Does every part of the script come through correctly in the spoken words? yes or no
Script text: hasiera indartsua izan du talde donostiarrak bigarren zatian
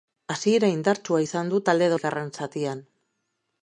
no